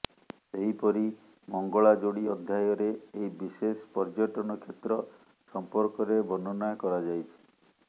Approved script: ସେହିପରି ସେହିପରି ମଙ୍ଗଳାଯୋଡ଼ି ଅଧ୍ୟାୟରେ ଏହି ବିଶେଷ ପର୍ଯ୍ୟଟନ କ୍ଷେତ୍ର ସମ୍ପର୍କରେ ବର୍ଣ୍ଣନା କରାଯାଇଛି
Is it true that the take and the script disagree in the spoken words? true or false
true